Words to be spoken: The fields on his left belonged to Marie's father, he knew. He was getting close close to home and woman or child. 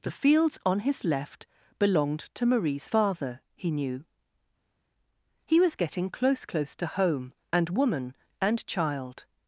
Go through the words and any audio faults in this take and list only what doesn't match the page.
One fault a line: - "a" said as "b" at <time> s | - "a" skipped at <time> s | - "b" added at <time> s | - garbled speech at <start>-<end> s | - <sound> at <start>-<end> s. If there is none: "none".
- "or" said as "and" at 8.4 s